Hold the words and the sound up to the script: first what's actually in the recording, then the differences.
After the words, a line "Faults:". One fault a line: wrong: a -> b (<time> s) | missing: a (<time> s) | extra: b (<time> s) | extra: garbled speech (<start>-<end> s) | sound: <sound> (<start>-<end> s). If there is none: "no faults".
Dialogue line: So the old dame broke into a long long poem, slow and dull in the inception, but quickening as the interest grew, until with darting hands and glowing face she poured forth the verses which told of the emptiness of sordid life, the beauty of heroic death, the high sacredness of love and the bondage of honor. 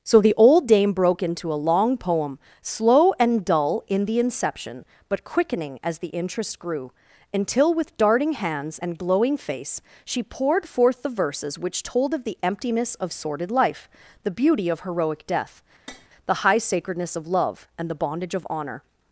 So the old dame broke into a long poem, slow and dull in the inception, but quickening as the interest grew, until with darting hands and glowing face she poured forth the verses which told of the emptiness of sordid life, the beauty of heroic death, the high sacredness of love and the bondage of honor.
Faults:
missing: long (2.0 s)
sound: tap (15.9-16.1 s)